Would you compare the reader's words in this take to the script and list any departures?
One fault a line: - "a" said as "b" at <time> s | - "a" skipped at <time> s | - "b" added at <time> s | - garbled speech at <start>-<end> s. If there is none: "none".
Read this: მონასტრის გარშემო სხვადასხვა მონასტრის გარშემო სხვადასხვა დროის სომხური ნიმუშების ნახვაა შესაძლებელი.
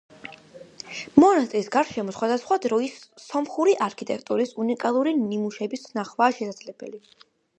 - "მონასტრის გარშემო სხვადასხვა დროის სომხური" said as "დროის სომხური არქიტექტურის უნიკალური" at 2.7 s